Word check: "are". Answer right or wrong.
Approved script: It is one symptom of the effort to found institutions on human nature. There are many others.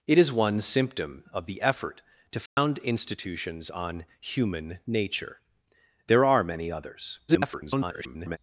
right